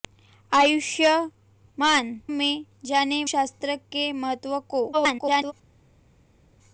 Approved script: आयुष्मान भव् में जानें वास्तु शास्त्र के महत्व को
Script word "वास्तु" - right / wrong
wrong